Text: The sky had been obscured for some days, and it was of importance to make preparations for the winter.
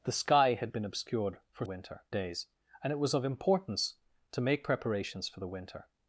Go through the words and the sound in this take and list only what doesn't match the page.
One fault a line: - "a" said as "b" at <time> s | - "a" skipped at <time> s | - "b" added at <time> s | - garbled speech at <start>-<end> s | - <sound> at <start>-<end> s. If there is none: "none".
- "some" said as "winter" at 1.6 s